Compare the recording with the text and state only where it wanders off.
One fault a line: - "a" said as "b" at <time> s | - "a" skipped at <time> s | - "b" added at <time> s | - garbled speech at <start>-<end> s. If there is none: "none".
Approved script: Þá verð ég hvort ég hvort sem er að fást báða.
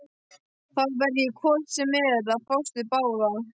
- "ég hvort" skipped at 1.7 s
- "við" added at 2.8 s